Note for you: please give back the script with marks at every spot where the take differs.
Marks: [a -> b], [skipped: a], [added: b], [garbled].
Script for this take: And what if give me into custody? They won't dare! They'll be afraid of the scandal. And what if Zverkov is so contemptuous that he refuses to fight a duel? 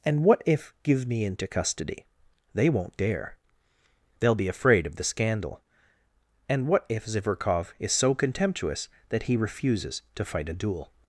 And what if give me into custody? They won't dare! They'll be afraid of the scandal. And what if Zverkov is so contemptuous that he refuses to fight a duel?